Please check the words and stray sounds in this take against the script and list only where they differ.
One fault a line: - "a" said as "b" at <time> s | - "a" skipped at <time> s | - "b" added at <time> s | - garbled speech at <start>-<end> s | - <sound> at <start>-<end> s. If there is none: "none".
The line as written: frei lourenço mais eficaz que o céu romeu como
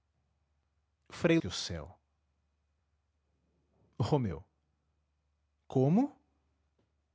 - "lourenço mais eficaz" skipped at 1.4 s